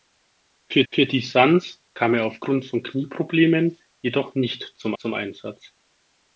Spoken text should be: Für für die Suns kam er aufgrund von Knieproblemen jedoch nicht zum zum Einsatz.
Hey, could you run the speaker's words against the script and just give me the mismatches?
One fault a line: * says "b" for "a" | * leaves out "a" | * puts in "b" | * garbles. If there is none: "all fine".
all fine